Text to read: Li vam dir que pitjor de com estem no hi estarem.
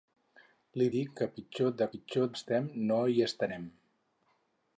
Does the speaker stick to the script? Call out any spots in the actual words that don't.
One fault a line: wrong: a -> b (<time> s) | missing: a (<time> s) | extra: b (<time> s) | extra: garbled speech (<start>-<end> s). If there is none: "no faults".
missing: vam (0.9 s)
wrong: com -> pitjor (1.9 s)